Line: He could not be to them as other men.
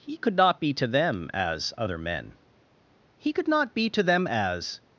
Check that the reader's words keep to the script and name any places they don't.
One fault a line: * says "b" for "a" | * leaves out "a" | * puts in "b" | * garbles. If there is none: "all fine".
* puts in "He could not be to them as"